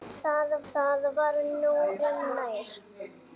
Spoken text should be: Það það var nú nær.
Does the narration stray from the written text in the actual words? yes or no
no